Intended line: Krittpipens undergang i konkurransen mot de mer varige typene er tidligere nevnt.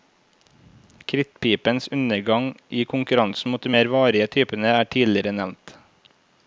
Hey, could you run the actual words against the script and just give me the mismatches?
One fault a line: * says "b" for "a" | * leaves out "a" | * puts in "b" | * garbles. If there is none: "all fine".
all fine